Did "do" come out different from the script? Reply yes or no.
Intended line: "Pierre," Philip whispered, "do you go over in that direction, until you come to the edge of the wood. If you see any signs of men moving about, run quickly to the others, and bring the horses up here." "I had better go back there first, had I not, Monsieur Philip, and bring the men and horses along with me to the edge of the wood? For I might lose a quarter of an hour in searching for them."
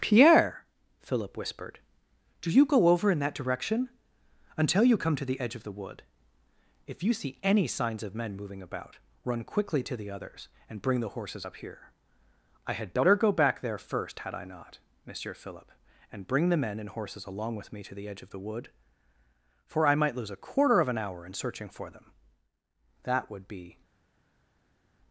no